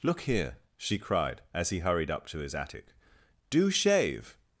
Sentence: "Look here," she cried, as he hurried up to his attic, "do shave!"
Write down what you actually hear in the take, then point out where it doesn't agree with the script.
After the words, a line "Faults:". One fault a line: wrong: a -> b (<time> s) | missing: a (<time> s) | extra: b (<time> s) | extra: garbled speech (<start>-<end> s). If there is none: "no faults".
"Look here," she cried, as he hurried up to his attic, "do shave!"
Faults:
no faults